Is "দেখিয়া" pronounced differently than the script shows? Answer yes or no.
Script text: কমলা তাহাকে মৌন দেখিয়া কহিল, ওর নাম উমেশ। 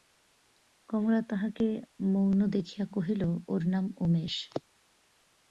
no